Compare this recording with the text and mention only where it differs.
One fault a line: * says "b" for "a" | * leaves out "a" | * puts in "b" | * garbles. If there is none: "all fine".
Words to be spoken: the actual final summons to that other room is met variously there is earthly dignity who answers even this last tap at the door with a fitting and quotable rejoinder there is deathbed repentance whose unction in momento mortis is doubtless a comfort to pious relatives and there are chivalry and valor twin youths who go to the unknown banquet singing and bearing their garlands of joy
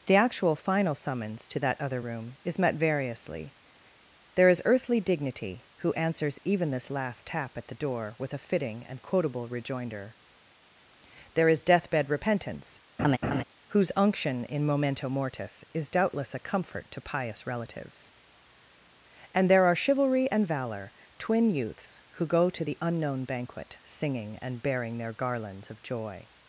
all fine